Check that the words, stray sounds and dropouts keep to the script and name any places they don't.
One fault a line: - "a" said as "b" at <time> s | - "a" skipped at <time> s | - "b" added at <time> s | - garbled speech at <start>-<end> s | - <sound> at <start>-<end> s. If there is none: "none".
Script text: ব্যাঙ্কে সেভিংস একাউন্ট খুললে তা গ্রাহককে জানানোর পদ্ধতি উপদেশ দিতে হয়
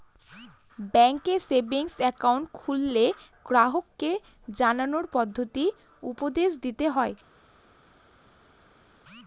- "তা" skipped at 3.0 s